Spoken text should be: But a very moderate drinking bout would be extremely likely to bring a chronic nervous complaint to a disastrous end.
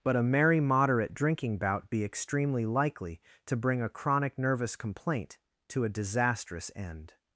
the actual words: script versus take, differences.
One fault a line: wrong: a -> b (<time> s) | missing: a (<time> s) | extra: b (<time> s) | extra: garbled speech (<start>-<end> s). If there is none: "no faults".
wrong: very -> merry (0.2 s)
missing: would (1.9 s)